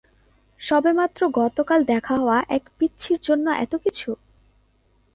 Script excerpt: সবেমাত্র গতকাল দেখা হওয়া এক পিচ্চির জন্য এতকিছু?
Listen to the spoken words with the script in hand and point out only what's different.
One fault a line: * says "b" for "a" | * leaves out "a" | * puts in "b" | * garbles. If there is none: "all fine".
all fine